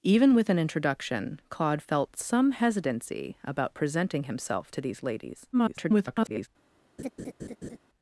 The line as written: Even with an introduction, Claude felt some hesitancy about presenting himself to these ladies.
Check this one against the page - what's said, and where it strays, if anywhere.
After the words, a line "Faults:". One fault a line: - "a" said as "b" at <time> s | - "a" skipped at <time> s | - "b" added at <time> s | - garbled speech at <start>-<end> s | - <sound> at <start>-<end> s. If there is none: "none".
Even with an introduction, Claude felt some hesitancy about presenting himself to these ladies. [garbled]
Faults:
- garbled speech at 5.5-6.5 s
- laugh at 7.0-7.8 s